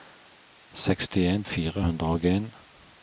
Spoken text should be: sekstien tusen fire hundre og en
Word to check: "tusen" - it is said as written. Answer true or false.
false